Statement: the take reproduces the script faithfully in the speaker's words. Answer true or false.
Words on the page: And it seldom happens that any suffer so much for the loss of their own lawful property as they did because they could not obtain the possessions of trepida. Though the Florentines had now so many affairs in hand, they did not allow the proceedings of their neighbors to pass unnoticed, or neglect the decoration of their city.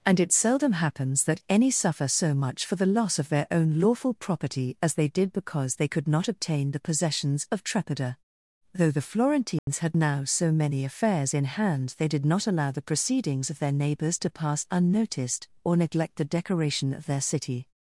true